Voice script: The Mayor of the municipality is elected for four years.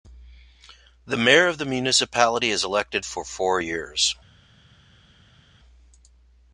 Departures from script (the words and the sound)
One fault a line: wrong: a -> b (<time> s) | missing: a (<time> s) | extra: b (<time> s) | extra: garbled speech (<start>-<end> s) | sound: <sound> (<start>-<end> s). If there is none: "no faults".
no faults